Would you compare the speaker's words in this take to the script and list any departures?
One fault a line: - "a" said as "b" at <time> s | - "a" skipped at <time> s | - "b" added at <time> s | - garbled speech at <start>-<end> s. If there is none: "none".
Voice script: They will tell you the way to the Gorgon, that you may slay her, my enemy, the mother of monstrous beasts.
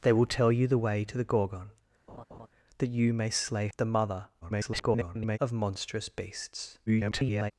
- "her my enemy" skipped at 3.7 s
- garbled speech at 4.4-5.4 s
- garbled speech at 6.9-7.5 s